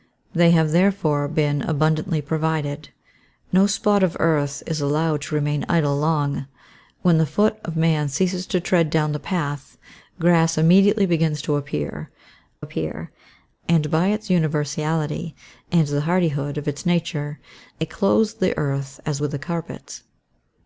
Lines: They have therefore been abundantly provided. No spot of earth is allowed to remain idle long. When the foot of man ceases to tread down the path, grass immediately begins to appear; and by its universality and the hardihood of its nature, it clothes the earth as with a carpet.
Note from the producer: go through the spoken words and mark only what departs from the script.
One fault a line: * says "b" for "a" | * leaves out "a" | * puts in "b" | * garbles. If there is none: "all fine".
* puts in "appear"